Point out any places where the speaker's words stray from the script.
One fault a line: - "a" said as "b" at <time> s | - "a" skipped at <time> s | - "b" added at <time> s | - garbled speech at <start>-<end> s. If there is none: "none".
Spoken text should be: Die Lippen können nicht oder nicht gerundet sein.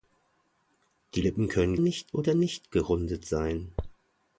none